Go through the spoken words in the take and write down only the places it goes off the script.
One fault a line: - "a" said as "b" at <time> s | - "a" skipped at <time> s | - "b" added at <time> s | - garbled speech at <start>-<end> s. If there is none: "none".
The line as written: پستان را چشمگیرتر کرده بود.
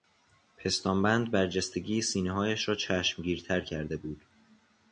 - "بند برجستگی سینههایش" added at 1.0 s